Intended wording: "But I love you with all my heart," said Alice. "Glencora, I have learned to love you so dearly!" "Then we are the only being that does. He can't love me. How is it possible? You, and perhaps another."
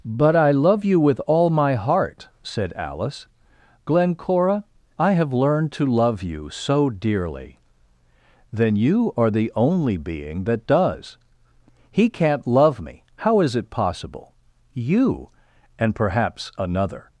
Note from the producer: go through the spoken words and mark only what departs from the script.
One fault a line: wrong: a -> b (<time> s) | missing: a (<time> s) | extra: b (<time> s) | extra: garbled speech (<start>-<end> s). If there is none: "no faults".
wrong: we -> you (8.8 s)